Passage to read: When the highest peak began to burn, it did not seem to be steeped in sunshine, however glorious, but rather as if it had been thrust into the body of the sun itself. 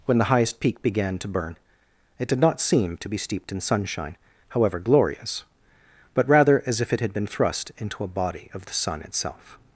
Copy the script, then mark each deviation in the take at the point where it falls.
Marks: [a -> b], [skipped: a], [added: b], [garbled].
When the highest peak began to burn, it did not seem to be steeped in sunshine, however glorious, but rather as if it had been thrust into [the -> a] body of the sun itself.